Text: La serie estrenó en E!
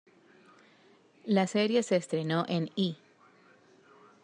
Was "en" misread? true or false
false